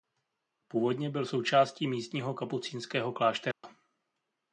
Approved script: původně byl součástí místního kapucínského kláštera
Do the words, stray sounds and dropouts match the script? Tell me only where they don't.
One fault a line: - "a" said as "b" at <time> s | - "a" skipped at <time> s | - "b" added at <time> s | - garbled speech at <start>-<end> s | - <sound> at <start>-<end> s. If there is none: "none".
- dropout at 3.5-3.6 s